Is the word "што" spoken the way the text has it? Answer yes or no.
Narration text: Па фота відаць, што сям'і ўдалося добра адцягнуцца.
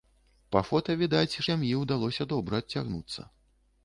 no